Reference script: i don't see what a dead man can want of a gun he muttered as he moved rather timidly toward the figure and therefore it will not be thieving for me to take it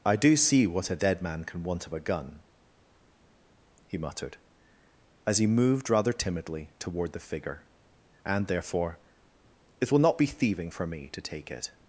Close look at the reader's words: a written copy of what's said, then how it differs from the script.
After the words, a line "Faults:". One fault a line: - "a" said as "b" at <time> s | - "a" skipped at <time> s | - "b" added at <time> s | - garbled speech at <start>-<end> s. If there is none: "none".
i do see what a dead man can want of a gun he muttered as he moved rather timidly toward the figure and therefore it will not be thieving for me to take it
Faults:
- "don't" said as "do" at 0.1 s